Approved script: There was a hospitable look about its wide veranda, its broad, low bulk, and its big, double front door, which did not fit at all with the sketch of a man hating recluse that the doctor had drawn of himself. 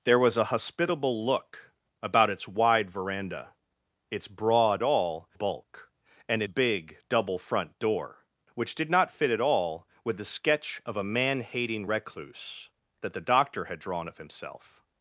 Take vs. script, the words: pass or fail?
fail